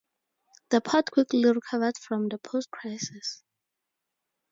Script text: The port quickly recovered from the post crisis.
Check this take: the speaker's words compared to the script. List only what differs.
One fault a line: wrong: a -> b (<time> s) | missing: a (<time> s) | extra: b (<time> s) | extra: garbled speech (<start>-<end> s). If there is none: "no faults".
no faults